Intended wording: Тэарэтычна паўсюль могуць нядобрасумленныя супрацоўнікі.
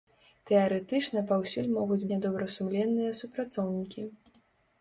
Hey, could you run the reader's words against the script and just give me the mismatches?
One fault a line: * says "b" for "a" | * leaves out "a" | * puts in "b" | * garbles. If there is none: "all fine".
all fine